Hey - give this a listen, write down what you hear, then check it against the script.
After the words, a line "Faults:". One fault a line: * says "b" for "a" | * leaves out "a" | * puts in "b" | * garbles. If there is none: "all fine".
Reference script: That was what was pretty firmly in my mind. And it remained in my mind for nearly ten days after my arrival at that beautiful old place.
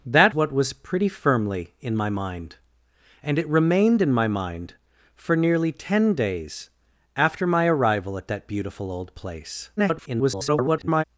That what was pretty firmly in my mind. And it remained in my mind for nearly ten days after my arrival at that beautiful old place. [garbled]
Faults:
* leaves out "was"
* garbles